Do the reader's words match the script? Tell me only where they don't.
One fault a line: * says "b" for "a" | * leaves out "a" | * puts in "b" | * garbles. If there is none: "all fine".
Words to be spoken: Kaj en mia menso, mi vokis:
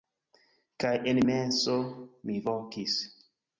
* leaves out "mia"